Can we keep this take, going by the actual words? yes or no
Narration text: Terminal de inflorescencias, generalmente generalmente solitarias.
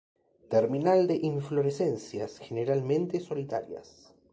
no